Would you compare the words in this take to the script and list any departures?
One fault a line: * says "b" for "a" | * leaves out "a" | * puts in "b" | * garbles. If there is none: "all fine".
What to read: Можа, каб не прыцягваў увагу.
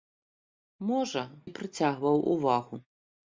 * leaves out "каб"